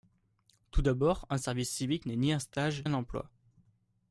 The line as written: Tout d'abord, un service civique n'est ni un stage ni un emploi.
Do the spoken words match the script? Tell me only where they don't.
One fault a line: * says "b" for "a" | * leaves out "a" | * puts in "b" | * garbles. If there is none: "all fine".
* leaves out "ni"